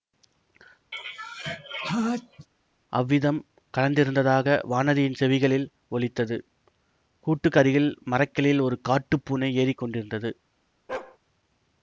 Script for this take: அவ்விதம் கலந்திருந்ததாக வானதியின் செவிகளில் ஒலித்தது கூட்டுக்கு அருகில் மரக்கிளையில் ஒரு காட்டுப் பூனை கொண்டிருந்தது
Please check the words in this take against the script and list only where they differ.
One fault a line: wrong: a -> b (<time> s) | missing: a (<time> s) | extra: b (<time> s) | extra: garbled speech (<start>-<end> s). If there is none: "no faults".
extra: ஏறி (9.6 s)